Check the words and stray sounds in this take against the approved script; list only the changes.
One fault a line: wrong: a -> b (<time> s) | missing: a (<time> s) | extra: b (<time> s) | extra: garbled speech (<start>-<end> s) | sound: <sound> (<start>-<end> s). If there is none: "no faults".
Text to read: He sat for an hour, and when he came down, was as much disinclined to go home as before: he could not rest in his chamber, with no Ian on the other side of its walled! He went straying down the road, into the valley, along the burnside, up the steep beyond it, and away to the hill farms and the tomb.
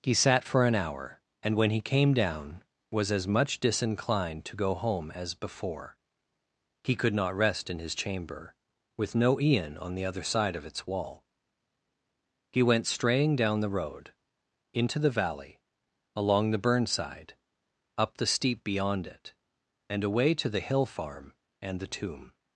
wrong: walled -> wall (10.9 s)
wrong: farms -> farm (20.9 s)